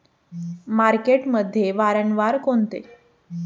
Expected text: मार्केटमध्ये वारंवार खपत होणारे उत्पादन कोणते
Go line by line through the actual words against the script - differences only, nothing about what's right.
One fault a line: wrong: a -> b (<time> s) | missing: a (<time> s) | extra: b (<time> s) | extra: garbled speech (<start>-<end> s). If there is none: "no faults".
missing: खपत होणारे उत्पादन (2.4 s)